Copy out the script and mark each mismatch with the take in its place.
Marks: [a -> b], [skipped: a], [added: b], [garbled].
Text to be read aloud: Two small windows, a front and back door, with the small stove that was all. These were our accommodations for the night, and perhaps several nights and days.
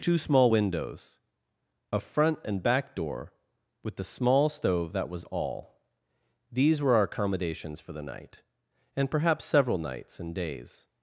Two small windows, a front and back door, with the small stove that was all. These were our accommodations for the night, and perhaps several nights and days.